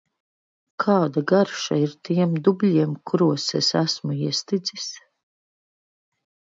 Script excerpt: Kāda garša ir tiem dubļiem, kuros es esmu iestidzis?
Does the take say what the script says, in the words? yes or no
yes